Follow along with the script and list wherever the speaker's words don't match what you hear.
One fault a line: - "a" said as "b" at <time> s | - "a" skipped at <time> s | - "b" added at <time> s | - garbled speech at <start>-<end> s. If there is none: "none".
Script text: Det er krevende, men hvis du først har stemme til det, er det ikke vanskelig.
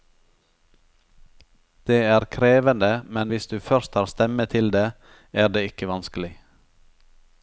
none